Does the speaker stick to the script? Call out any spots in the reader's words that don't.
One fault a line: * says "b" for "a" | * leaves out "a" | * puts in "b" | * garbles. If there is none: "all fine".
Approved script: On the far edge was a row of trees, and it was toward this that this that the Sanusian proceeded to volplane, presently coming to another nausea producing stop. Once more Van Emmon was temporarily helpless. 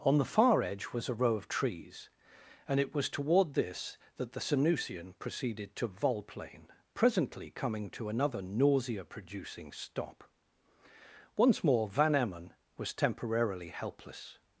* leaves out "this that"